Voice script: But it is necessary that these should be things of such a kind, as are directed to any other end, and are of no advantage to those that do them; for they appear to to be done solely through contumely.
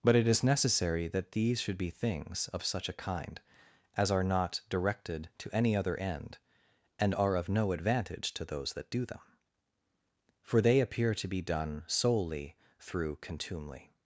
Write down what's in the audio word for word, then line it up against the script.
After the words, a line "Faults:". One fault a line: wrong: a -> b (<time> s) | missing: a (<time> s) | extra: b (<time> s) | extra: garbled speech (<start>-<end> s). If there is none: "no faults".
But it is necessary that these should be things of such a kind, as are not directed to any other end, and are of no advantage to those that do them; for they appear to be done solely through contumely.
Faults:
extra: not (4.2 s)
missing: to (11.3 s)